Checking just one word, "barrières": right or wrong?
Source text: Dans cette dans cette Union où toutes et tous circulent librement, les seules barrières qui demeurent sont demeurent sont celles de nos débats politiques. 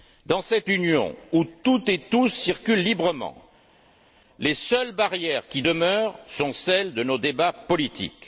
right